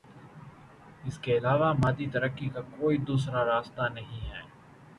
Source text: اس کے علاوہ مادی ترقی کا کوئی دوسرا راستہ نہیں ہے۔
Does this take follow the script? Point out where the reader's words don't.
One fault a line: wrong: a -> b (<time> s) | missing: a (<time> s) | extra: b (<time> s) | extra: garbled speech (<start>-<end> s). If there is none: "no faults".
no faults